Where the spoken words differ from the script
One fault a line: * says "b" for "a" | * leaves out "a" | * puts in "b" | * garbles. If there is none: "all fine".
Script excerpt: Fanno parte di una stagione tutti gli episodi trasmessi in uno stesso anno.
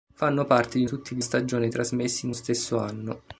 * leaves out "una stagione"
* says "stagione" for "episodi"
* leaves out "uno"